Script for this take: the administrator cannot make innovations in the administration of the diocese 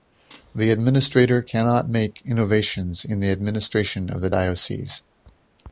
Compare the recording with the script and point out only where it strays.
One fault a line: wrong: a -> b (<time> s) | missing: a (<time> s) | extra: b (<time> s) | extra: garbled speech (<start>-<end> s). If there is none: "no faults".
no faults